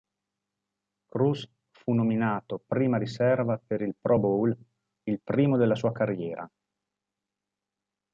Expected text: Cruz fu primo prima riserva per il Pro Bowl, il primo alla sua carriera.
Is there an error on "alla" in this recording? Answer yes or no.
yes